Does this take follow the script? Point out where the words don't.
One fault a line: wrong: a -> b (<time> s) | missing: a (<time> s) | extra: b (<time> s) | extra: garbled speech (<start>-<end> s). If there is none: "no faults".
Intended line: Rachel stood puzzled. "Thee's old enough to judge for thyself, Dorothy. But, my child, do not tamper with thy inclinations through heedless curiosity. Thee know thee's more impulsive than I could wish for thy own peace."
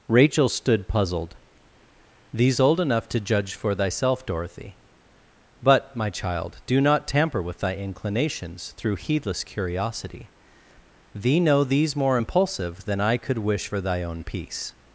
no faults